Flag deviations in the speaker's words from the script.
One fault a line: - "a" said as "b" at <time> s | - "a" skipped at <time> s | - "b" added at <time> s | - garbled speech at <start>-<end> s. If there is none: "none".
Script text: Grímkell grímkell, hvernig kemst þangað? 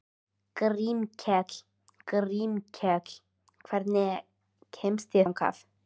none